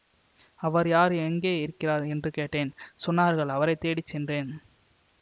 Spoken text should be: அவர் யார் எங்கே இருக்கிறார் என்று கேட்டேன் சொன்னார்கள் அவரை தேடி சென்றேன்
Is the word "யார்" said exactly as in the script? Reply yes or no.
yes